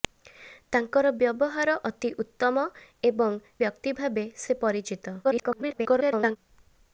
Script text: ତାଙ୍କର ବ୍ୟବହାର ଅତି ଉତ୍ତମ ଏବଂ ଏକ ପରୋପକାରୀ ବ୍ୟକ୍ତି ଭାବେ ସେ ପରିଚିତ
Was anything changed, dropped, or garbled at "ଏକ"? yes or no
yes